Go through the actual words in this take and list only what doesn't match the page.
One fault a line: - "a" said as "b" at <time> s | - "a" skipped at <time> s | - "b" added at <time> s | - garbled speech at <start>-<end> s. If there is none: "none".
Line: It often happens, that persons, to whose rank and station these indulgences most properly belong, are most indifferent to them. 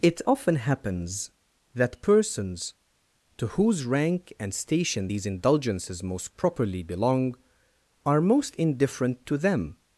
none